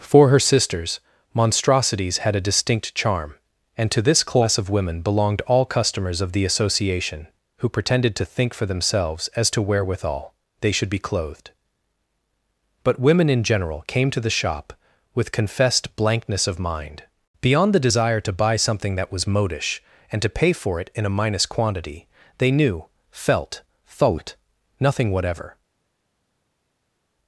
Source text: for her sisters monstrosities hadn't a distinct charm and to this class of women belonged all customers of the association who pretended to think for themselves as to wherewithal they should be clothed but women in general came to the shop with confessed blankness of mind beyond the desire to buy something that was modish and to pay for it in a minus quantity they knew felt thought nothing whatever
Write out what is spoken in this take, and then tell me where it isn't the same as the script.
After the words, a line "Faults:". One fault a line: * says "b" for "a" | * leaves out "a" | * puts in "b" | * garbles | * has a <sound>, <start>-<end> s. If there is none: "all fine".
for her sisters monstrosities had a distinct charm and to this class of women belonged all customers of the association who pretended to think for themselves as to wherewithal they should be clothed but women in general came to the shop with confessed blankness of mind beyond the desire to buy something that was modish and to pay for it in a minus quantity they knew felt thought nothing whatever
Faults:
* says "had" for "hadn't"